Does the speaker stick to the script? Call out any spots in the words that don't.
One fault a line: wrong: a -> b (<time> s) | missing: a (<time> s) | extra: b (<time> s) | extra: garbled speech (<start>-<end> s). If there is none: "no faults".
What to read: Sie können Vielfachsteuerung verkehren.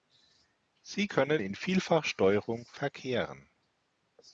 extra: in (1.4 s)